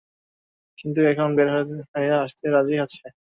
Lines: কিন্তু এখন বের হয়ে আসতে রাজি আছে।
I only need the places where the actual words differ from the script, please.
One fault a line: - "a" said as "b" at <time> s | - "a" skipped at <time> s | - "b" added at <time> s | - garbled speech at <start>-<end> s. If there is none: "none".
none